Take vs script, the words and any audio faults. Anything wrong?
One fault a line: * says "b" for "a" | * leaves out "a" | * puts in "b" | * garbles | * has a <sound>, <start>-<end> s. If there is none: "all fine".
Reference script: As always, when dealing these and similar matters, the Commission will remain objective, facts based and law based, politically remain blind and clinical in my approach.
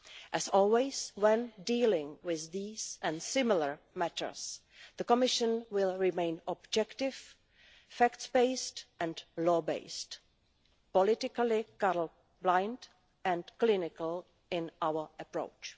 * puts in "with"
* says "colour" for "remain"
* says "our" for "my"